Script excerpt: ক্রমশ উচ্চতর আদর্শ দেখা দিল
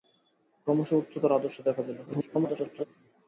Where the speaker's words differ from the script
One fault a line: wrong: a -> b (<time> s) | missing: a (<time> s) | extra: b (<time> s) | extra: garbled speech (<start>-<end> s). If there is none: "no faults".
extra: garbled speech (2.1-2.9 s)